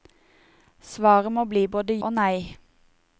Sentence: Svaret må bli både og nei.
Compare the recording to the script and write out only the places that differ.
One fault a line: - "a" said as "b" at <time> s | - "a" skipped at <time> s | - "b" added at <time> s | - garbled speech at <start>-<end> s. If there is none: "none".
none